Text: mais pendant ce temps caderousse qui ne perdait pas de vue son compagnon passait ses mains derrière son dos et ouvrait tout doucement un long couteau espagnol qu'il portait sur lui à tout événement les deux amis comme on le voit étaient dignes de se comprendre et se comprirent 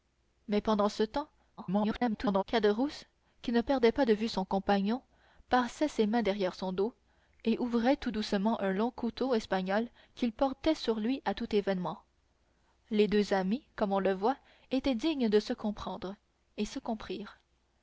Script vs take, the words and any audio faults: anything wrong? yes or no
yes